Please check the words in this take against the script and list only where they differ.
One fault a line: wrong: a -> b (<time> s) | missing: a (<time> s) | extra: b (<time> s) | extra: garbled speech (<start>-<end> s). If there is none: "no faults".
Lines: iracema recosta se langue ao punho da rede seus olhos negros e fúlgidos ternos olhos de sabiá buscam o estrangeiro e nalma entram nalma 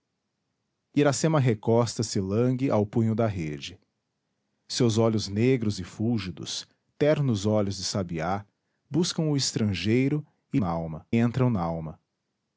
no faults